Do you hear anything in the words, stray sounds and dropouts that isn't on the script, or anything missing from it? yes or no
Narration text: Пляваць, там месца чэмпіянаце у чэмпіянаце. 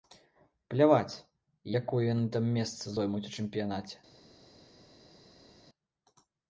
yes